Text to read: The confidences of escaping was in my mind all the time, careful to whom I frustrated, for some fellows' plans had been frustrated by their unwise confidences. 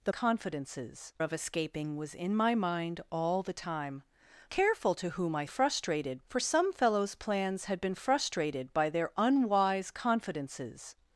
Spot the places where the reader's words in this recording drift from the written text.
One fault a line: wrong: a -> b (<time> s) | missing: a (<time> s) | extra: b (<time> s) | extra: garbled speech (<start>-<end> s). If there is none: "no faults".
no faults